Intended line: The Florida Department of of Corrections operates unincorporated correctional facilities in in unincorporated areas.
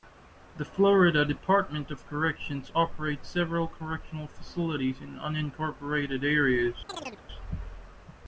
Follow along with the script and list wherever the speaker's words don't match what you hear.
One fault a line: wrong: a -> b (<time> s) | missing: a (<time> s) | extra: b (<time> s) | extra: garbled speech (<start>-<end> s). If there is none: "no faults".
missing: of (2.1 s)
wrong: unincorporated -> several (3.3 s)
missing: in (5.2 s)